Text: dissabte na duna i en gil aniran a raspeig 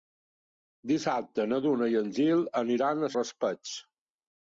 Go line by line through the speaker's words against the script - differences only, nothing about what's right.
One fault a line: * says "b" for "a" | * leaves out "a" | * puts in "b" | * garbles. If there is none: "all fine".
all fine